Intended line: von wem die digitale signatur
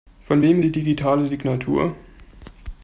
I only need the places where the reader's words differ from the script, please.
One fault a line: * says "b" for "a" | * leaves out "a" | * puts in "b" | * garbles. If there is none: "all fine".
all fine